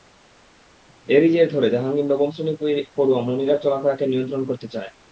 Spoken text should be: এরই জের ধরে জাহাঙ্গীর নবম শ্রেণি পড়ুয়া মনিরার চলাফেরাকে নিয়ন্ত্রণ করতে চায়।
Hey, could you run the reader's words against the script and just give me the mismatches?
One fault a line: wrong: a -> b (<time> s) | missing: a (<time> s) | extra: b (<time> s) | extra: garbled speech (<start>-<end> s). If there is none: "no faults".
no faults